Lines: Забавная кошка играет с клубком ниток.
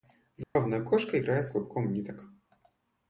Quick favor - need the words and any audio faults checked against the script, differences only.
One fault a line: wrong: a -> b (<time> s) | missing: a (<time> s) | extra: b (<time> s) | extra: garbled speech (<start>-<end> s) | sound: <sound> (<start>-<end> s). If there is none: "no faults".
sound: dropout (0.4-0.6 s)